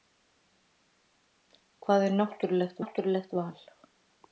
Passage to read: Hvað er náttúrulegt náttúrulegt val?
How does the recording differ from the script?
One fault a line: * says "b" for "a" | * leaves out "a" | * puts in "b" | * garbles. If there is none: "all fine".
all fine